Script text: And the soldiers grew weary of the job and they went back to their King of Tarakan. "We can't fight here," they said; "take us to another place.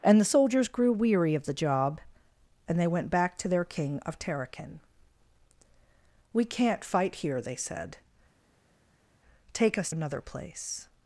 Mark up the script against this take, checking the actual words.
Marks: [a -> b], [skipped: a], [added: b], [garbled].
And the soldiers grew weary of the job and they went back to their King of Tarakan. "We can't fight here," they said; "take us [skipped: to] another place.